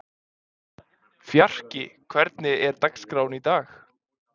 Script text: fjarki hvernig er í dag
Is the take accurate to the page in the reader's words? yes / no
no